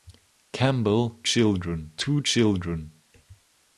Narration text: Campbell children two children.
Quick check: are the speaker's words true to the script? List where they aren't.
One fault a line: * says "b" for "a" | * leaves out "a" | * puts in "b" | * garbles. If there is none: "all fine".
all fine